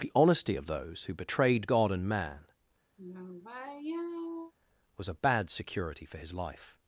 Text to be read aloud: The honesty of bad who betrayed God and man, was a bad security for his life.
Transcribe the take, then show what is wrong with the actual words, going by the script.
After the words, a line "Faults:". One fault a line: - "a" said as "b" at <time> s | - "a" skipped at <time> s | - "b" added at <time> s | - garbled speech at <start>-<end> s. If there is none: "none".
The honesty of those who betrayed God and man, was a bad security for his life.
Faults:
- "bad" said as "those" at 0.7 s